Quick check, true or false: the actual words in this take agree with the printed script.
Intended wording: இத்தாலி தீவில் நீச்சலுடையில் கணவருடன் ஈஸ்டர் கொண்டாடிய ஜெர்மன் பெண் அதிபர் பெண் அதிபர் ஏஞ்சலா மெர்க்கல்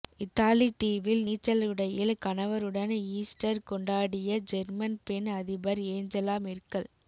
false